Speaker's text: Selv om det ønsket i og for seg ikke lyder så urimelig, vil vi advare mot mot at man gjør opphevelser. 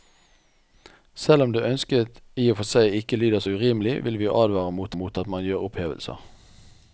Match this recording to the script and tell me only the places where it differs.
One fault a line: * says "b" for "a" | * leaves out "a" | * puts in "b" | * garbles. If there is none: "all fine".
all fine